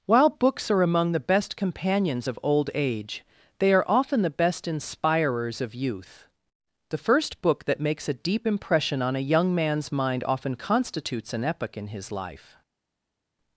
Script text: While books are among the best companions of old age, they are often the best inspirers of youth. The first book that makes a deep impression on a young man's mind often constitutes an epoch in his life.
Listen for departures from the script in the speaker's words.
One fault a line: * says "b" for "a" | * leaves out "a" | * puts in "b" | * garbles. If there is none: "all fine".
all fine